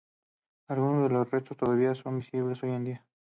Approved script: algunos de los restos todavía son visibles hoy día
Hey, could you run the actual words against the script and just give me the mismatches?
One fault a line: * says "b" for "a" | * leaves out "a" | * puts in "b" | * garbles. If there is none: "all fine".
* puts in "en"